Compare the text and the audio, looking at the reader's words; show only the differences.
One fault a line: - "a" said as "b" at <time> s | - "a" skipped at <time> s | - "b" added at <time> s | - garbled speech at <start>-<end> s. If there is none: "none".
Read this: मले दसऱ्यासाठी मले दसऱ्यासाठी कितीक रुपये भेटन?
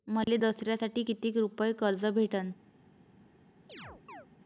- "मले दसऱ्यासाठी" skipped at 1.0 s
- "कर्ज" added at 1.7 s